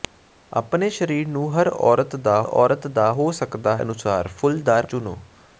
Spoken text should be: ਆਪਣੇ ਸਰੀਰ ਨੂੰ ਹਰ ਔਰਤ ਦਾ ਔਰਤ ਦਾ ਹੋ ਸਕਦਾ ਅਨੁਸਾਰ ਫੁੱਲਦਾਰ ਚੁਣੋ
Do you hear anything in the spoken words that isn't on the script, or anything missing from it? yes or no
no